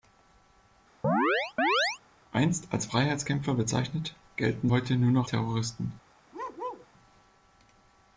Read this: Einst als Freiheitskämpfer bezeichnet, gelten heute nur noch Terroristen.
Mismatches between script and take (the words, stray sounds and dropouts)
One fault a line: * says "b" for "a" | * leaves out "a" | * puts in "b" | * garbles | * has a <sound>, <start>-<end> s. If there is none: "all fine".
* has a chirp, 1.0-2.0 s
* has a bark, 6.3-6.9 s